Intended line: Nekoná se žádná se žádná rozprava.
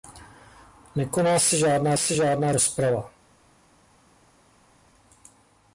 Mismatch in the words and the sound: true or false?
false